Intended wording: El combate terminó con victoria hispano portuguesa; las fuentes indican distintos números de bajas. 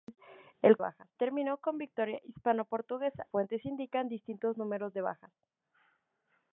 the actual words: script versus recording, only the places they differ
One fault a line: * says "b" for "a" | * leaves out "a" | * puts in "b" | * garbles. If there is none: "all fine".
* says "bajas" for "combate"
* leaves out "las"